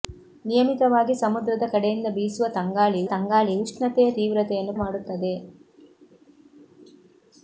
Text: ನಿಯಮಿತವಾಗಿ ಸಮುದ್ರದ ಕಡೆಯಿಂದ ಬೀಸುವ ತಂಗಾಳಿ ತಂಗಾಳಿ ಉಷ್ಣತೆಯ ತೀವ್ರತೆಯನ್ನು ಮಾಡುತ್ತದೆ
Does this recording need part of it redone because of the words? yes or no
no